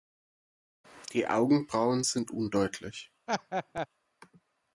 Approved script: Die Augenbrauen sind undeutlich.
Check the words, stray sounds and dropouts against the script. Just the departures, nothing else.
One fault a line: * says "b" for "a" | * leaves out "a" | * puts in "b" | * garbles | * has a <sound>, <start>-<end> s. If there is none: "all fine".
* has a laugh, 3.3-3.9 s